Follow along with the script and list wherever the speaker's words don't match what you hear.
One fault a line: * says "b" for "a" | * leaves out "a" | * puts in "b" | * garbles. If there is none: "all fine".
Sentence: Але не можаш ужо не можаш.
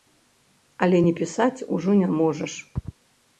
* says "пісаць" for "можаш"